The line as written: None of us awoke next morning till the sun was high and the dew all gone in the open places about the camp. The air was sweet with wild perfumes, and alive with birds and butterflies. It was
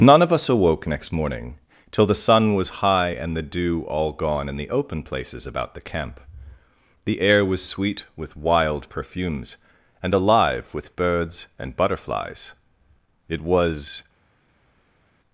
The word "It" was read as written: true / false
true